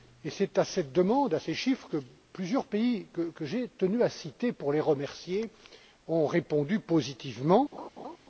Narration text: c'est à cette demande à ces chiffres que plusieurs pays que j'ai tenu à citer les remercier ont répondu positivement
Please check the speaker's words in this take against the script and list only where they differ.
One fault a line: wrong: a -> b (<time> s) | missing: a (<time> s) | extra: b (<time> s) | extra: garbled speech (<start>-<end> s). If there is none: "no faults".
extra: pour (4.5 s)